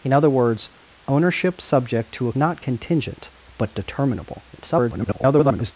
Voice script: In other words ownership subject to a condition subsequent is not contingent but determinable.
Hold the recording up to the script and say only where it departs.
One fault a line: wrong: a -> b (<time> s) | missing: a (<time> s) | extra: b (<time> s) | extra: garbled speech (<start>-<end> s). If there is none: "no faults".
missing: condition subsequent is (2.3 s)
extra: garbled speech (4.5-5.7 s)